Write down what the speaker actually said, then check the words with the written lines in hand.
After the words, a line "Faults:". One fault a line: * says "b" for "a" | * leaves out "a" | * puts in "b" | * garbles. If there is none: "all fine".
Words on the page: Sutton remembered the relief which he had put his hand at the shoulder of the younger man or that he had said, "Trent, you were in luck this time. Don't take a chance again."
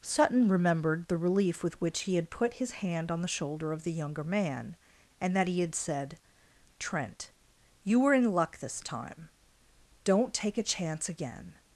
Sutton remembered the relief with which he had put his hand on the shoulder of the younger man and that he had said, "Trent, you were in luck this time. Don't take a chance again."
Faults:
* puts in "with"
* says "on" for "at"
* says "and" for "or"